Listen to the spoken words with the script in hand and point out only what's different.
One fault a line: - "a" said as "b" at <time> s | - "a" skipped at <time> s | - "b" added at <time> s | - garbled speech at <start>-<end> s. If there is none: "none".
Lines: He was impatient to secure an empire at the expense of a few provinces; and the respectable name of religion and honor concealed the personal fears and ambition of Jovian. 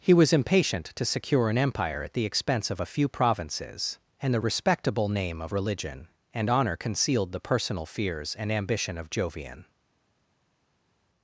none